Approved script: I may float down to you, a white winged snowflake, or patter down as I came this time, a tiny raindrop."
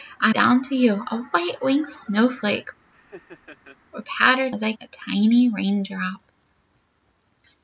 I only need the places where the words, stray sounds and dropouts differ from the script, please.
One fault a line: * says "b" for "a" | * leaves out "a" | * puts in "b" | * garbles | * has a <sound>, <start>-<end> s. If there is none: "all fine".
* leaves out "may float"
* has a laugh, 2.9-3.8 s
* leaves out "down"
* leaves out "came this time"